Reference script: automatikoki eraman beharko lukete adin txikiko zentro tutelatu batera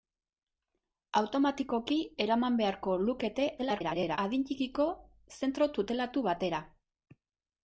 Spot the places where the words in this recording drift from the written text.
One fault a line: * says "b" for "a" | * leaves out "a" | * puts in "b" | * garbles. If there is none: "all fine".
* garbles